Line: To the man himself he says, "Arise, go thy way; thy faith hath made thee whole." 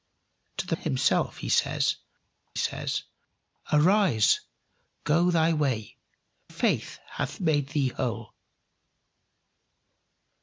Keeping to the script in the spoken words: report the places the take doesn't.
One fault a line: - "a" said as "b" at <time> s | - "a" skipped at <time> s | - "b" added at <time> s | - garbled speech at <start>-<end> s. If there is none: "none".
- "man" skipped at 0.8 s
- "says" added at 2.5 s
- "thy" skipped at 6.0 s